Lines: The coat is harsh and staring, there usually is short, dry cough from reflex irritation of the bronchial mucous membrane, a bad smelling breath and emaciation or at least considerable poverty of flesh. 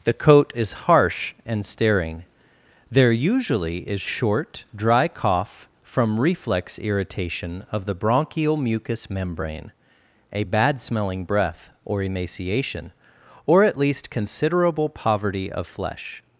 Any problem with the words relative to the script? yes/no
yes